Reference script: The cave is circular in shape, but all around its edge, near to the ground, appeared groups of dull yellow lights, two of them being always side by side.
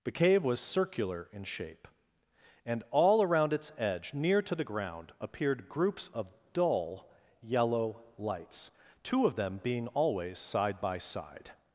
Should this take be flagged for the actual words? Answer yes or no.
yes